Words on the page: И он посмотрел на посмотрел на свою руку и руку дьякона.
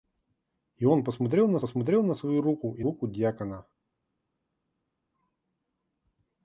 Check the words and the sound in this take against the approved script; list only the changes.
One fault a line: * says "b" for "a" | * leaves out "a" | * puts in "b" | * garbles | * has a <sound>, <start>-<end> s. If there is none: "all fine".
all fine